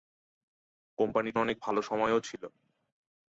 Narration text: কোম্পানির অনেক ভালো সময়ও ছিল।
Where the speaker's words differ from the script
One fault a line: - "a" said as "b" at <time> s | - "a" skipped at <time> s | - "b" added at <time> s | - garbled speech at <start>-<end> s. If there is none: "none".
none